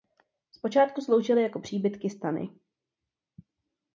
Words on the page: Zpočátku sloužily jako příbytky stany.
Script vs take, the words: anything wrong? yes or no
no